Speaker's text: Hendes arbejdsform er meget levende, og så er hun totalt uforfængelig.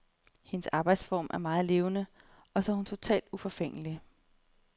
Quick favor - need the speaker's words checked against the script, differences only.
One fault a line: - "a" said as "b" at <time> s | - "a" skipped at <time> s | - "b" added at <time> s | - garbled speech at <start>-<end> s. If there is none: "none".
none